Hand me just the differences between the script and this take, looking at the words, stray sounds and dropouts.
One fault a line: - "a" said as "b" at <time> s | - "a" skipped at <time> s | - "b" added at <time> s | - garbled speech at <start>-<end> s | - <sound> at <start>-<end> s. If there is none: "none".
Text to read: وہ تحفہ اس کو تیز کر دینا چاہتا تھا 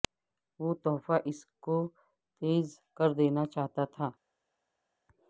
none